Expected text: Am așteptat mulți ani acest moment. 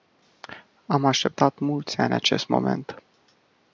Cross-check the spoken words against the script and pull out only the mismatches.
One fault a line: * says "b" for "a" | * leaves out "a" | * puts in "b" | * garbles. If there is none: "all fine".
all fine